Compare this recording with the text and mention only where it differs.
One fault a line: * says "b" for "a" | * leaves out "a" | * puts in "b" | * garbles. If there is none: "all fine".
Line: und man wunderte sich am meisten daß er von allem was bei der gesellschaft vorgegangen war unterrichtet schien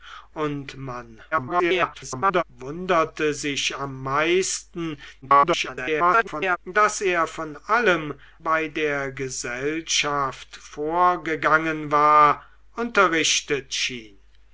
* garbles
* garbles
* leaves out "was"